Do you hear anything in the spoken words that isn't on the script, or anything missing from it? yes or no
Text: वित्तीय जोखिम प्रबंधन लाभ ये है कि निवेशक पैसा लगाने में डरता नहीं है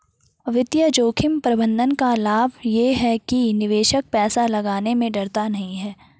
yes